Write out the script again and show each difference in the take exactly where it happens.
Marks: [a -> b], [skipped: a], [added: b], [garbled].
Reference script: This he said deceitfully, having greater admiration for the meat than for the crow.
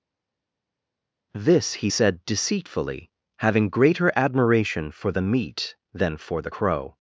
This he said deceitfully, having greater admiration for the meat than for the crow.